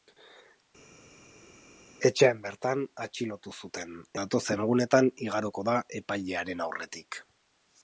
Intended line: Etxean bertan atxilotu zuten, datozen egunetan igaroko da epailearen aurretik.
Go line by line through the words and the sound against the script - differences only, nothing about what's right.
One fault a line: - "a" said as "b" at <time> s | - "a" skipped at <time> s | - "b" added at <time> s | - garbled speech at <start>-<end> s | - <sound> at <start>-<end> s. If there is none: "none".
none